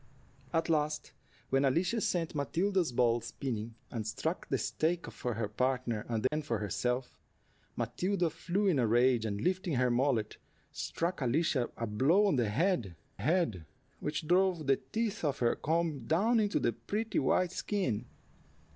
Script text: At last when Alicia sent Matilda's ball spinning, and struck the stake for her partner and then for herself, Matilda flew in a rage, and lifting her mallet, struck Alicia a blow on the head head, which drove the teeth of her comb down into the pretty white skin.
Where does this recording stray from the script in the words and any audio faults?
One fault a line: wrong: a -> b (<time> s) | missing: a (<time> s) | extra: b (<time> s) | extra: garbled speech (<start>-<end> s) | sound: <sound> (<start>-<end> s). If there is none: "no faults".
sound: dropout (6.3-6.3 s)